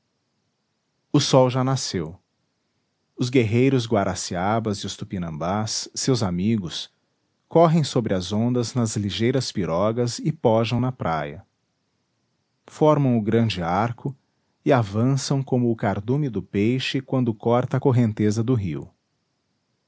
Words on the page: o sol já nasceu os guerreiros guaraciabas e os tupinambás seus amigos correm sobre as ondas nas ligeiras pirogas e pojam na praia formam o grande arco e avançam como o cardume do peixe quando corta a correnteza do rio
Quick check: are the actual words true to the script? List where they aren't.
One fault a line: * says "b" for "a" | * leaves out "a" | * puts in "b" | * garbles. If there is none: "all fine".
all fine